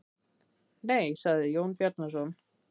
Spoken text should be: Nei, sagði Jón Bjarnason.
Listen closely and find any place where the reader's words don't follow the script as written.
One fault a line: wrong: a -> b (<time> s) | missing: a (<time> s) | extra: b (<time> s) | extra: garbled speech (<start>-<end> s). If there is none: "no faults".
no faults